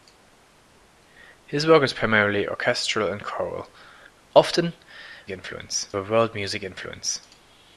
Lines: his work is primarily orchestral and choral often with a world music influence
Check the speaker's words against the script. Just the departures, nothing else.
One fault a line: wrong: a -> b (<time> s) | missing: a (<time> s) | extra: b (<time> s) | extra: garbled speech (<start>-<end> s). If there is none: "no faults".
wrong: with -> influence (5.3 s)